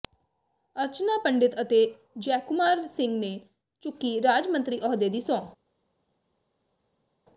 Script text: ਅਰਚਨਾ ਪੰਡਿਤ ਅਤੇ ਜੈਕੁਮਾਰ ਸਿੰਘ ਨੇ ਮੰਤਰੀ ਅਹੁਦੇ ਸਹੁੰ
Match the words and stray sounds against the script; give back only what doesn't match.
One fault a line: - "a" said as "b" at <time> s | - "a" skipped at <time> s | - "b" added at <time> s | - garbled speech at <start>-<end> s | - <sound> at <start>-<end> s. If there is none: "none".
- "ਚੁੱਕੀ ਰਾਜ" added at 3.8 s
- "ਦੀ" added at 5.1 s